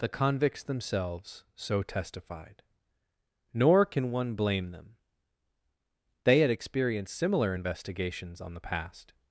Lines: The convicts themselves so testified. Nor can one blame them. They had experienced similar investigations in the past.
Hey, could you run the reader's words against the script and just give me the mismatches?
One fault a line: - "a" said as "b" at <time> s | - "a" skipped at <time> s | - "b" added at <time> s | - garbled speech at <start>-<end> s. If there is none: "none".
- "in" said as "on" at 8.4 s